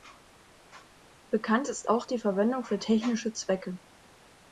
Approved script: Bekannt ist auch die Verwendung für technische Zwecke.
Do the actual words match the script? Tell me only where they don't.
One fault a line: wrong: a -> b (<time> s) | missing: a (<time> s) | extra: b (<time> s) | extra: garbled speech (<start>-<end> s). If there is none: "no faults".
no faults